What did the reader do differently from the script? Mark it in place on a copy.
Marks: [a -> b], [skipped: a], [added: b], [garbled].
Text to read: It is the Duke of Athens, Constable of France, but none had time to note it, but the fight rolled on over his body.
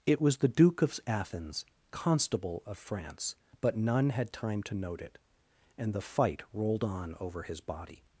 It [is -> was] the Duke of Athens, Constable of France, but none had time to note it, [but -> and] the fight rolled on over his body.